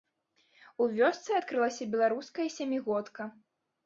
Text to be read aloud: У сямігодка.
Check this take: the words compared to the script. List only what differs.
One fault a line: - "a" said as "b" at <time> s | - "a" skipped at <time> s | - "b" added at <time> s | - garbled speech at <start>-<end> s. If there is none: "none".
- "вёсцы адкрылася беларуская" added at 1.0 s